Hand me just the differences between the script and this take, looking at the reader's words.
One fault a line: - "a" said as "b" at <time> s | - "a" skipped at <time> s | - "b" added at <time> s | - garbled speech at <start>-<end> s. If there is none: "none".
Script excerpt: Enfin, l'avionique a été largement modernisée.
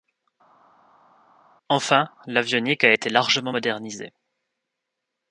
none